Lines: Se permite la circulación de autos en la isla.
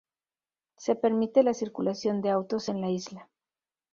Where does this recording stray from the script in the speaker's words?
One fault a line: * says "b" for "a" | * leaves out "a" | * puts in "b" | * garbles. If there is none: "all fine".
all fine